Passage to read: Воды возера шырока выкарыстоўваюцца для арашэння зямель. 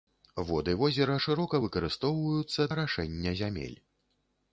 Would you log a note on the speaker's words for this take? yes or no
yes